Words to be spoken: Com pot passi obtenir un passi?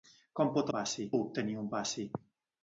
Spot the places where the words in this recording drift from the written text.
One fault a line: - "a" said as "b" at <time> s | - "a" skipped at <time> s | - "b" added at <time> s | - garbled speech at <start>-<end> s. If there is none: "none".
none